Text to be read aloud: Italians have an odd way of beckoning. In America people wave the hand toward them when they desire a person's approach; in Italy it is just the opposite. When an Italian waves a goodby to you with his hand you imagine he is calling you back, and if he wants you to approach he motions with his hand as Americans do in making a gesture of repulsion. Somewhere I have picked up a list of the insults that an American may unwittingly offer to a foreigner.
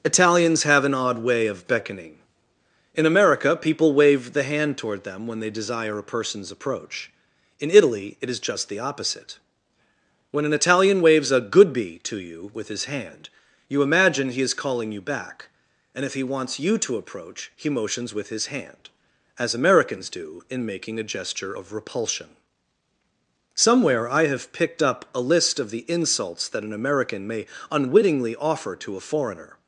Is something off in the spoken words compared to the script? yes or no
no